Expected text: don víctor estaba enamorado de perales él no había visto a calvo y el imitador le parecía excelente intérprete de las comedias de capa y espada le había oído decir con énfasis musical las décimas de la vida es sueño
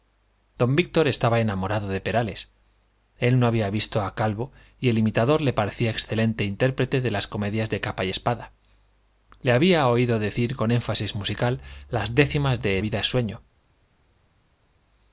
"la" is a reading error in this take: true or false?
true